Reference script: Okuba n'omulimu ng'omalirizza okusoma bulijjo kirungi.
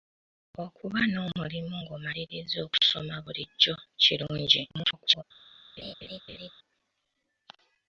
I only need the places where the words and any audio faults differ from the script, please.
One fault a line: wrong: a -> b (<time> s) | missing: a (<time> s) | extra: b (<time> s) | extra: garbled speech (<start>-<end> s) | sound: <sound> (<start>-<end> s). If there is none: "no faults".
extra: garbled speech (4.7-5.2 s)
sound: laugh (5.8-6.5 s)